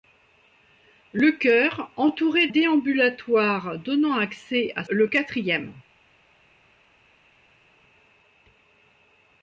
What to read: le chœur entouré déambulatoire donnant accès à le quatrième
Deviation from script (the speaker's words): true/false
false